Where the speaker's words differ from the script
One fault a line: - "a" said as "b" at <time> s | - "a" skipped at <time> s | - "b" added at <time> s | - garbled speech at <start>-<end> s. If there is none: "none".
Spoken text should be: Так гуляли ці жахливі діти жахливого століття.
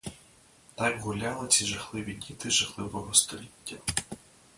none